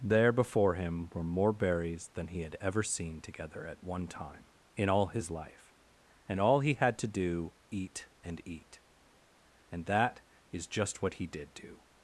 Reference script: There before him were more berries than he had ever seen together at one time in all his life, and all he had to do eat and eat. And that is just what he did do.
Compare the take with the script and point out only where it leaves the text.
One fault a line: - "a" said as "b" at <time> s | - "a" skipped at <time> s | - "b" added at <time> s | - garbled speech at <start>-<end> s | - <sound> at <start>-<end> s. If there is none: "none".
none